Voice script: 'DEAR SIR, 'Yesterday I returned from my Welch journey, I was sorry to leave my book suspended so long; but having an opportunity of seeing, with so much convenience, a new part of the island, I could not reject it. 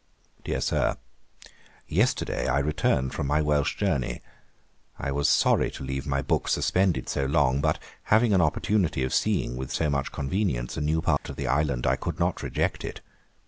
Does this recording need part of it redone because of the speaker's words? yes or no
no